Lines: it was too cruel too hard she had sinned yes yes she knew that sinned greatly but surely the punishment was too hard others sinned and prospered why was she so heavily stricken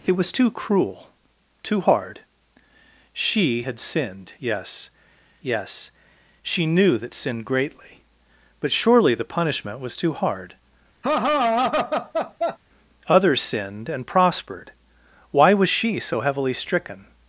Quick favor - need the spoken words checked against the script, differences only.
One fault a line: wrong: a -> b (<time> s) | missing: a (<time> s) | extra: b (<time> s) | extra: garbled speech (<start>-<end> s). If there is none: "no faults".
no faults